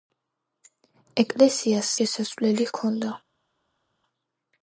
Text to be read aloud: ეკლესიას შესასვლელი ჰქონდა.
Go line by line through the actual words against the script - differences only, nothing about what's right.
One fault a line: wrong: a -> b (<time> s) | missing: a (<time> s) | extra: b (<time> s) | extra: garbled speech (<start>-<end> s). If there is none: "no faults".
no faults